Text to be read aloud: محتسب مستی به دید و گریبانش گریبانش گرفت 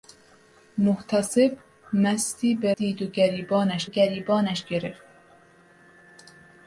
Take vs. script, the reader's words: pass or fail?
pass